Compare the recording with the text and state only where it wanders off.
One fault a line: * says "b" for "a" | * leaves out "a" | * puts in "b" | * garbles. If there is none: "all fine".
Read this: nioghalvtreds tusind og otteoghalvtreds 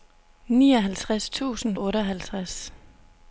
all fine